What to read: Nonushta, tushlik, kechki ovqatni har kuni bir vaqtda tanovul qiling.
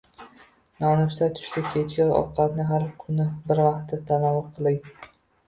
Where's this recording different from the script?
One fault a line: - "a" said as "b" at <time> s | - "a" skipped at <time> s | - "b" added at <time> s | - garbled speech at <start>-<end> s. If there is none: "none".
none